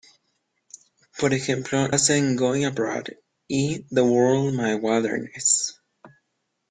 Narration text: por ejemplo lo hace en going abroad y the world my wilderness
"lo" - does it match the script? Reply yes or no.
no